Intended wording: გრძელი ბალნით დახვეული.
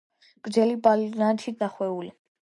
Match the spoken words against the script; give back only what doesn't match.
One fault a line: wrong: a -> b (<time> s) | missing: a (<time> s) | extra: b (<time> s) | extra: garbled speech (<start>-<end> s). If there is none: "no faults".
no faults